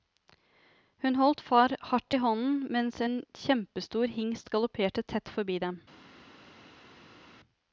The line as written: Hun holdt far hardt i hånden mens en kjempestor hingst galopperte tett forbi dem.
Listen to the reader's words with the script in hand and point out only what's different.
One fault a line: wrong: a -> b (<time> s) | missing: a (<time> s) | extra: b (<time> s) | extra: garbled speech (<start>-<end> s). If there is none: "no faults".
no faults